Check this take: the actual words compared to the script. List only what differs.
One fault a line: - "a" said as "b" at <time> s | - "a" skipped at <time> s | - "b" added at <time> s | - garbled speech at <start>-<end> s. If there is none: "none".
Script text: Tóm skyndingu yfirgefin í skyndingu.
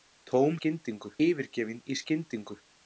none